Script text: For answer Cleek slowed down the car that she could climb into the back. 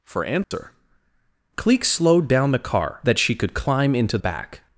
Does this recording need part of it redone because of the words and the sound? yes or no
yes